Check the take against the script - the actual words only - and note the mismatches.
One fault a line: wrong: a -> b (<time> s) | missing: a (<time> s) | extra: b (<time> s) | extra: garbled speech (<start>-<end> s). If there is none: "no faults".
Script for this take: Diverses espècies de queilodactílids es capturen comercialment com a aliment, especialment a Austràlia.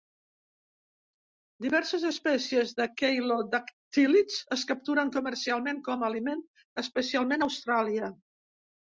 no faults